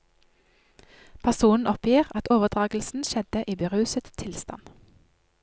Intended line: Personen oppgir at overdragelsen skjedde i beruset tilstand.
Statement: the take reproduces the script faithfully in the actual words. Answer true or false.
true